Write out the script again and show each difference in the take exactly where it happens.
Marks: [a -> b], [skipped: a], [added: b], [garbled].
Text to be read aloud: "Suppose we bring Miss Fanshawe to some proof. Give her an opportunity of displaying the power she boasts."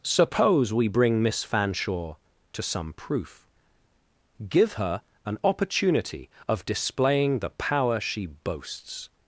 "Suppose we bring Miss Fanshawe to some proof. Give her an opportunity of displaying the power she boasts."